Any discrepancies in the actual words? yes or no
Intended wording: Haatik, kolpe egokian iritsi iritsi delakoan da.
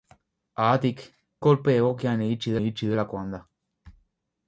no